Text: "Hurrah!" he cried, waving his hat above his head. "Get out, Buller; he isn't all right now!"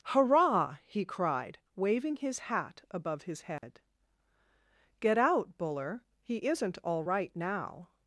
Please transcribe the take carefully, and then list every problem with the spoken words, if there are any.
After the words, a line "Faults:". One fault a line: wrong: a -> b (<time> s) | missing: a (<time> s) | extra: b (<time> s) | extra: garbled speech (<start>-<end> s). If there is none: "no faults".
"Hurrah!" he cried, waving his hat above his head. "Get out, Buller; he isn't all right now!"
Faults:
no faults